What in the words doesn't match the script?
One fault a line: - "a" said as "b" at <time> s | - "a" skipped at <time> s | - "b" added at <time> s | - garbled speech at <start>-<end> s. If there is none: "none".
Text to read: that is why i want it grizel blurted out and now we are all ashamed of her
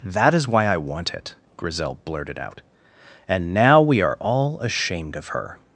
none